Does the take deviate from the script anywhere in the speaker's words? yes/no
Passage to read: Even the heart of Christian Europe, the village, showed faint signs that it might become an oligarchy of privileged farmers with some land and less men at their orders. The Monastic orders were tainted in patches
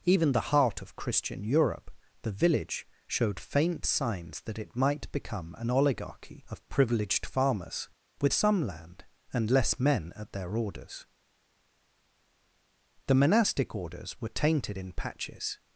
no